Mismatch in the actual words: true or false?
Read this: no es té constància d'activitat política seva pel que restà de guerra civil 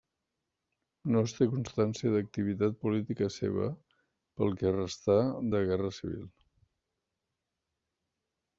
false